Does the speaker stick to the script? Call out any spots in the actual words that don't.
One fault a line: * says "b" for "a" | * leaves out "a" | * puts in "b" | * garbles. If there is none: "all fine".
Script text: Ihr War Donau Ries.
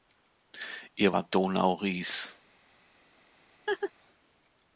all fine